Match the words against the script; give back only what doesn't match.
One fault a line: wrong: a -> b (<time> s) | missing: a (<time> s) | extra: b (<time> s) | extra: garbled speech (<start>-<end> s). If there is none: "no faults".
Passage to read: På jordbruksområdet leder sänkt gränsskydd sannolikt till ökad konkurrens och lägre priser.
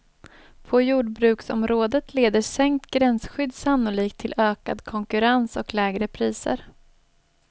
no faults